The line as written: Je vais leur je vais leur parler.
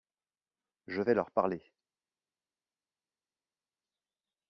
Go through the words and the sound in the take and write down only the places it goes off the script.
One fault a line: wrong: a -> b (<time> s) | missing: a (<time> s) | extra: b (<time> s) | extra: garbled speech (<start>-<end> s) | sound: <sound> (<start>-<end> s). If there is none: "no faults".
missing: je vais leur (1.3 s)